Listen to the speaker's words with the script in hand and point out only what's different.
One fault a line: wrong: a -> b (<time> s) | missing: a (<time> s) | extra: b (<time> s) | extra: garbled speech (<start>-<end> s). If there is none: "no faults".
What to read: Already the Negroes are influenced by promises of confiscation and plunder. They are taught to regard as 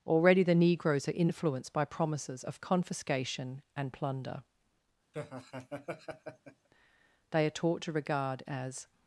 no faults